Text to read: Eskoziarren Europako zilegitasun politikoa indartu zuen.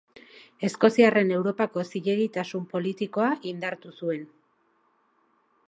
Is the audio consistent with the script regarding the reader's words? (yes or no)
yes